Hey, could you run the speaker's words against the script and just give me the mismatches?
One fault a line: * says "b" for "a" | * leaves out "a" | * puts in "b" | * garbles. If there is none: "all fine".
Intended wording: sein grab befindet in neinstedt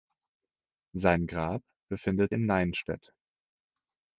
all fine